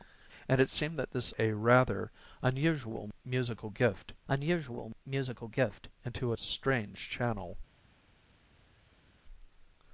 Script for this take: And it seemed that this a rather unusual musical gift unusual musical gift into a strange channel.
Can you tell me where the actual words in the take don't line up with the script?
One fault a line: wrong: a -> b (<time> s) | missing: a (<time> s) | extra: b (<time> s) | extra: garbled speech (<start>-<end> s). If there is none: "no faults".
no faults